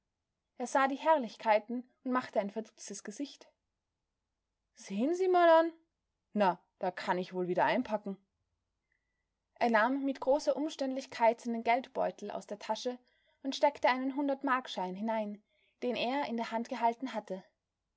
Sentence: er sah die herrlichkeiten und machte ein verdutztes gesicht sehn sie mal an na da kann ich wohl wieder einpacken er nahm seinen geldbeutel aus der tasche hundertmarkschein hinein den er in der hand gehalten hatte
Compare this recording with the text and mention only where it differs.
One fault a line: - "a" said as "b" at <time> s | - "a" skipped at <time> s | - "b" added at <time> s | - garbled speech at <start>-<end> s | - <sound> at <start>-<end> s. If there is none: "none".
- "mit großer umständlichkeit" added at 10.0 s
- "und steckte einen" added at 13.4 s